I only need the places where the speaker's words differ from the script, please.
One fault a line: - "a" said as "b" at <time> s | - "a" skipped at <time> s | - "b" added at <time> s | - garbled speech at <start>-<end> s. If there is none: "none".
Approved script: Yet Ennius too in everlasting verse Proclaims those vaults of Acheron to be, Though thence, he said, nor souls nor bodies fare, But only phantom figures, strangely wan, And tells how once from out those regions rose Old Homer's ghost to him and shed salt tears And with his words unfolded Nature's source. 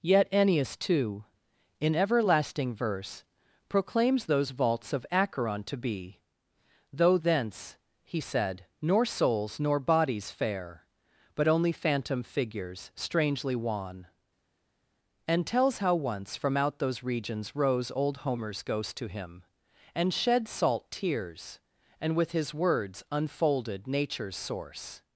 none